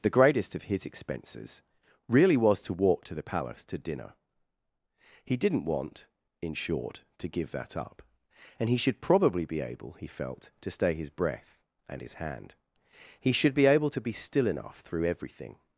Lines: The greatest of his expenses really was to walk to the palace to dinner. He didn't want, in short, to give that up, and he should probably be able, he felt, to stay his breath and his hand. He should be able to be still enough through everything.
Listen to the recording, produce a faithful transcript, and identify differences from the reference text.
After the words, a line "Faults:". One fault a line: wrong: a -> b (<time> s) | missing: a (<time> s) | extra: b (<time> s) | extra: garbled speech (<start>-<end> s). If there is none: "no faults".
The greatest of his expenses really was to walk to the palace to dinner. He didn't want, in short, to give that up, and he should probably be able, he felt, to stay his breath and his hand. He should be able to be still enough through everything.
Faults:
no faults